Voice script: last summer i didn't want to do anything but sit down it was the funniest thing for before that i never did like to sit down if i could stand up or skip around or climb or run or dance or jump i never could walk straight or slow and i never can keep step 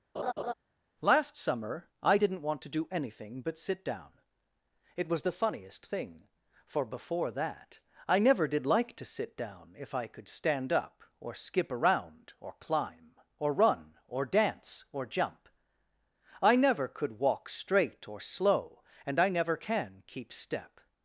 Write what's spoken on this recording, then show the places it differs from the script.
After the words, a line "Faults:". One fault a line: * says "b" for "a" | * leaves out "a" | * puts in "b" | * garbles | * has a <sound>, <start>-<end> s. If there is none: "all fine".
last summer i didn't want to do anything but sit down it was the funniest thing for before that i never did like to sit down if i could stand up or skip around or climb or run or dance or jump i never could walk straight or slow and i never can keep step
Faults:
* has a laugh, 0.1-0.5 s